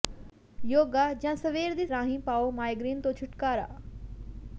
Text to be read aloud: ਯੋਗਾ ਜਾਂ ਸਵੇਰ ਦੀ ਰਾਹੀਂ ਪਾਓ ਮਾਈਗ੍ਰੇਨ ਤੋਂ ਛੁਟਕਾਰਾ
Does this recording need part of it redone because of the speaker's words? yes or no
no